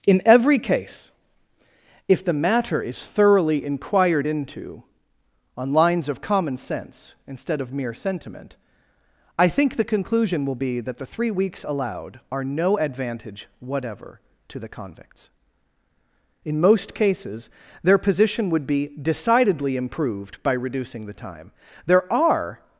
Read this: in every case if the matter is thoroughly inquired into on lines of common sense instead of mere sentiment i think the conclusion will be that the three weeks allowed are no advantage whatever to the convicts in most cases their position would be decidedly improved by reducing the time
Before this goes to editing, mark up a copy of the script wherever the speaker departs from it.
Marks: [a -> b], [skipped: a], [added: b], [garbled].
in every case if the matter is thoroughly inquired into on lines of common sense instead of mere sentiment i think the conclusion will be that the three weeks allowed are no advantage whatever to the convicts in most cases their position would be decidedly improved by reducing the time [added: there are]